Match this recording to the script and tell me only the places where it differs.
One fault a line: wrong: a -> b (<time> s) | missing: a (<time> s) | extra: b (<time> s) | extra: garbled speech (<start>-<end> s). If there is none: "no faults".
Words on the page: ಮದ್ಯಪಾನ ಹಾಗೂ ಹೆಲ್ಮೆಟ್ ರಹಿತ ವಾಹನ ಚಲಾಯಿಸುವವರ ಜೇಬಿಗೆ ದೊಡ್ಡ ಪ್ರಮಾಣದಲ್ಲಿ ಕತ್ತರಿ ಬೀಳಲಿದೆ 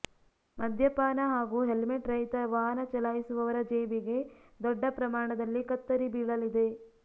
no faults